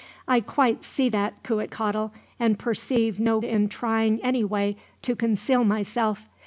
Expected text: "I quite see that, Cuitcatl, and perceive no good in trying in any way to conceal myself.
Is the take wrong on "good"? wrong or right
wrong